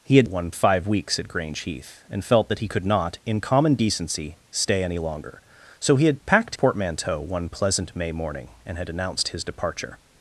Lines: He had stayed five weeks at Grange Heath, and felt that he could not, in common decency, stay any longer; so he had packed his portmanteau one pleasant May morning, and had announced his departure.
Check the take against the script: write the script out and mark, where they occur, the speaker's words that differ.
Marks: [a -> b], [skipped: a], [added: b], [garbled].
He had [stayed -> one] five weeks at Grange Heath, and felt that he could not, in common decency, stay any longer; so he had packed [skipped: his] portmanteau one pleasant May morning, and had announced his departure.